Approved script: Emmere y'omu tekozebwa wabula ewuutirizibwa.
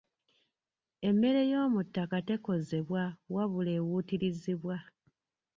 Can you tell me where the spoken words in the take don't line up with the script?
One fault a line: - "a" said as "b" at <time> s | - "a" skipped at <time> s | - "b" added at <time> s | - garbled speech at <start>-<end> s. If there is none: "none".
- "ttaka" added at 1.9 s